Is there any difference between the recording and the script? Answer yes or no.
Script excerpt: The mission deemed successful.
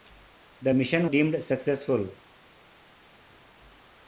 no